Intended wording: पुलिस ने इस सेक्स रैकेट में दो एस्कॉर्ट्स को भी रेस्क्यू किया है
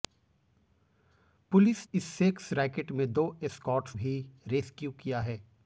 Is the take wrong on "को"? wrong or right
wrong